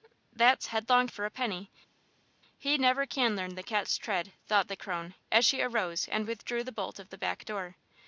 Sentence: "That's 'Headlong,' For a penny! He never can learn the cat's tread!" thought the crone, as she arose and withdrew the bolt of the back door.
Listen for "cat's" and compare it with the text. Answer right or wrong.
right